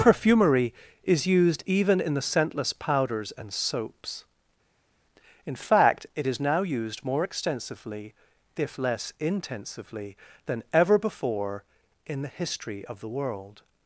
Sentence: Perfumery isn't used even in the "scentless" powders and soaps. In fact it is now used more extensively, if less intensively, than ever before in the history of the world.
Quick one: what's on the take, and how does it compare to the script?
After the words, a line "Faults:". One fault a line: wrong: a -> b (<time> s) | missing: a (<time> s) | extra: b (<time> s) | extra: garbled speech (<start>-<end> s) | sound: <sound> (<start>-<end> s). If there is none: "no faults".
Perfumery is used even in the "scentless" powders and soaps. In fact it is now used more extensively, if less intensively, than ever before in the history of the world.
Faults:
wrong: isn't -> is (1.0 s)